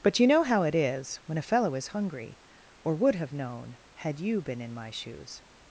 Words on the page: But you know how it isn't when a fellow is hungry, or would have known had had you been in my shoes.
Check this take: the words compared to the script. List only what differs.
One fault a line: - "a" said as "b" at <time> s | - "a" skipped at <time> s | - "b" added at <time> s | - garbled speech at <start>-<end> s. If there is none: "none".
- "isn't" said as "is" at 0.7 s
- "had" skipped at 4.2 s